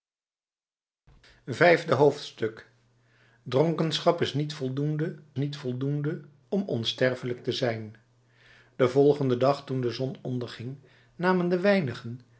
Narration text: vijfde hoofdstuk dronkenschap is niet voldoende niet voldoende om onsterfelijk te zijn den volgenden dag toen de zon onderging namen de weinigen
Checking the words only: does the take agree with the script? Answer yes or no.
yes